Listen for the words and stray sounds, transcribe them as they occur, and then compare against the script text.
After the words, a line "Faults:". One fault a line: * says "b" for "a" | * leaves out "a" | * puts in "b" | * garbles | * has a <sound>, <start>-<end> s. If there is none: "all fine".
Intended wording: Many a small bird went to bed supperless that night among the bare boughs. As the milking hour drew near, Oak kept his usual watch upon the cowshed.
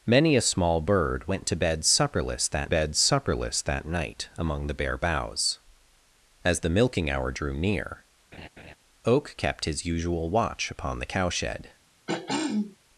Many a small bird went to bed supperless that bed supperless that night among the bare boughs. As the milking hour drew near, Oak kept his usual watch upon the cowshed.
Faults:
* puts in "bed supperless that"
* has a laugh, 8.3-8.7 s
* has a throat clearing, 12.1-12.8 s